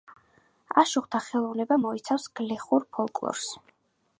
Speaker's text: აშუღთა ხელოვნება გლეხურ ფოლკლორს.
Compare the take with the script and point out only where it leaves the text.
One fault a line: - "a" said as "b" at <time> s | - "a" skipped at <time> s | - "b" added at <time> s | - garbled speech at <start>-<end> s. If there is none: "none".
- "მოიცავს" added at 1.8 s